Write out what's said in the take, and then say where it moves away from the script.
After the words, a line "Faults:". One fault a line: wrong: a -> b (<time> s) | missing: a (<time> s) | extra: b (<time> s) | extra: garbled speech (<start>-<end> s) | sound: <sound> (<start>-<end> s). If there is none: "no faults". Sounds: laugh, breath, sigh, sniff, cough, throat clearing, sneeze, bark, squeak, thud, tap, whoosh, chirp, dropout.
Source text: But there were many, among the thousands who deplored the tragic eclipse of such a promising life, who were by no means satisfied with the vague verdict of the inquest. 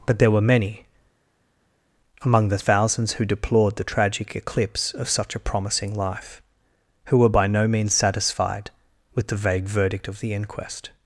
But there were many, among the thousands who deplored the tragic eclipse of such a promising life, who were by no means satisfied with the vague verdict of the inquest.
Faults:
no faults